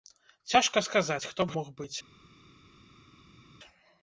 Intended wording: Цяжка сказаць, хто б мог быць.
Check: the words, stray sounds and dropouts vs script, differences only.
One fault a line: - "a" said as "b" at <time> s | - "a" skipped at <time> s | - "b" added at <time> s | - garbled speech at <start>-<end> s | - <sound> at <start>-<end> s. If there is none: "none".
none